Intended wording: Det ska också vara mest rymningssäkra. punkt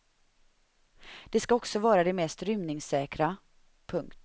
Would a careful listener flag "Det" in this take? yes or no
no